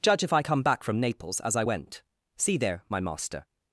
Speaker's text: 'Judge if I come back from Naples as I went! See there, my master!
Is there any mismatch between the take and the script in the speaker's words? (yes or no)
no